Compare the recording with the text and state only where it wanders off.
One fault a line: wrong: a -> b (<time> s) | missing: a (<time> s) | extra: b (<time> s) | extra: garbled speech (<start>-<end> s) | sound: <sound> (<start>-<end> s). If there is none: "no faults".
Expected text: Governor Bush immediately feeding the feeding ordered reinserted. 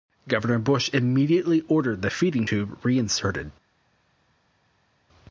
wrong: feeding -> ordered (1.7 s)
wrong: ordered -> tube (2.4 s)